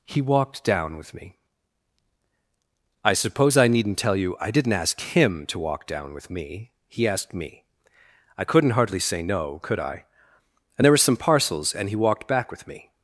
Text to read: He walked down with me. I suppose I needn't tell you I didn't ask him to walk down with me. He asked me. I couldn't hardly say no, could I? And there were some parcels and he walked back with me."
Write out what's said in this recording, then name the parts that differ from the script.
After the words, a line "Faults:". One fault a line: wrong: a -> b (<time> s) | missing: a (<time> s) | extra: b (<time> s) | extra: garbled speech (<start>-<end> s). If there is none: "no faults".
He walked down with me. I suppose I needn't tell you I didn't ask him to walk down with me. He asked me. I couldn't hardly say no, could I? And there were some parcels and he walked back with me."
Faults:
no faults